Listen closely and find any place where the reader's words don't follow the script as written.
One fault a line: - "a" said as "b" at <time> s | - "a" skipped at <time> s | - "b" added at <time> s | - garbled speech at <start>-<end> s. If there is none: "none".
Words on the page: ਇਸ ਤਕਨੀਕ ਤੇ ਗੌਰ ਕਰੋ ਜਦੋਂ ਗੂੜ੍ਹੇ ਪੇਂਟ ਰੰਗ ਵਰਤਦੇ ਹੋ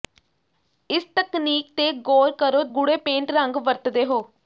- "ਜਦੋਂ" skipped at 2.6 s